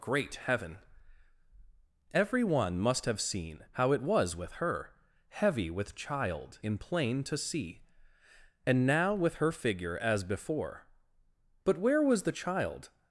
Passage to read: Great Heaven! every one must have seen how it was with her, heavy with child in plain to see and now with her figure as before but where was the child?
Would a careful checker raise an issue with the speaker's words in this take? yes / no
no